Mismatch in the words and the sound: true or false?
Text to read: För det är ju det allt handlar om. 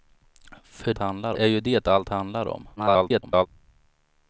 true